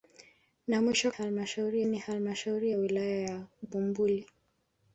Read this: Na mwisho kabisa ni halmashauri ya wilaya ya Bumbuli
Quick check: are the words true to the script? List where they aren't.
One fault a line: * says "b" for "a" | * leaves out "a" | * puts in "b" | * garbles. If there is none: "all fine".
* says "halmashauri" for "kabisa"